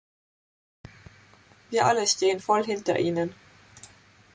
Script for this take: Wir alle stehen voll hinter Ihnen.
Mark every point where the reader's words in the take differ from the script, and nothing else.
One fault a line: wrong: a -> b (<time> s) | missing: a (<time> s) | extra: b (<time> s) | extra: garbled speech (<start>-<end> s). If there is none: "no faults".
no faults